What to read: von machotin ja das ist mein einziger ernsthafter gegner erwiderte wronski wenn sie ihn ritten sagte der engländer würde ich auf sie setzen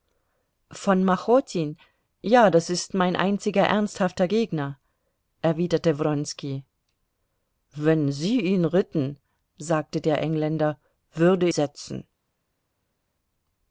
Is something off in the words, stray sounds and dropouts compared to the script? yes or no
yes